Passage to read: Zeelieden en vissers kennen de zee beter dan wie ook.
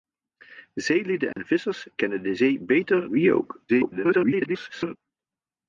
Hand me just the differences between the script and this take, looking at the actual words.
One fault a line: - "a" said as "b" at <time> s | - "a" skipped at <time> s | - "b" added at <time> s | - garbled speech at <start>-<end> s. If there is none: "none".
- "dan" skipped at 3.1 s
- garbled speech at 3.7-5.0 s